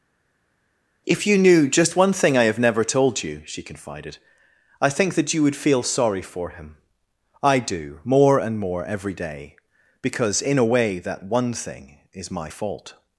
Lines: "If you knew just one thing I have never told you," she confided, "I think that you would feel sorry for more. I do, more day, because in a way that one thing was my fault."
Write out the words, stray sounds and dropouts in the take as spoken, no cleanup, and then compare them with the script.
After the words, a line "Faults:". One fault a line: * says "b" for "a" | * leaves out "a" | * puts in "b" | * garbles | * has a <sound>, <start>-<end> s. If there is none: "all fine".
"If you knew just one thing I have never told you," she confided, "I think that you would feel sorry for him. I do, more and more every day, because in a way that one thing is my fault."
Faults:
* says "him" for "more"
* puts in "and more every"
* says "is" for "was"